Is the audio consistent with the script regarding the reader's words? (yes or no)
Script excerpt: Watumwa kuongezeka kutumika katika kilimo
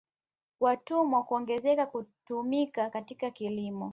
yes